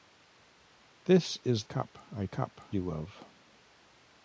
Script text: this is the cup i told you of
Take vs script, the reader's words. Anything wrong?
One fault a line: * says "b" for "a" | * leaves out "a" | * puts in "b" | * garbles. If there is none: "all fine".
* leaves out "the"
* says "cup" for "told"